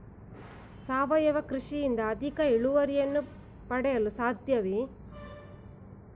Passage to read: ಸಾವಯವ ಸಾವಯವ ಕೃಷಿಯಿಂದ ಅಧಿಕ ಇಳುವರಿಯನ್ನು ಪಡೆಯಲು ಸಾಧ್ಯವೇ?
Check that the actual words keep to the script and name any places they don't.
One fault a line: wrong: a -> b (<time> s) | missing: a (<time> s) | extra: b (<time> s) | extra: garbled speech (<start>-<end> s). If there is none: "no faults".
missing: ಸಾವಯವ (1.4 s)